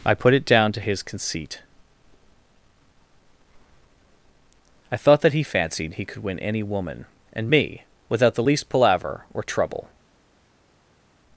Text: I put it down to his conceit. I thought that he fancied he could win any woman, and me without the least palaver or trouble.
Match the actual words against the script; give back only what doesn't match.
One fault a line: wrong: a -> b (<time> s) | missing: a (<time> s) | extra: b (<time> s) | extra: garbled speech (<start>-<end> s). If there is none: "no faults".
no faults